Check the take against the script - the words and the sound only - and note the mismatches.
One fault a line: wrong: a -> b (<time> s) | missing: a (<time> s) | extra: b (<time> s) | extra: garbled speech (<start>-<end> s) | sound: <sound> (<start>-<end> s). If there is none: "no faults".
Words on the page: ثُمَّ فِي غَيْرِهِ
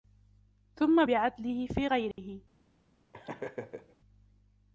extra: بِعَدْلِهِ (1.0 s)
sound: dropout (2.1-2.2 s)
sound: laugh (3.1-4.0 s)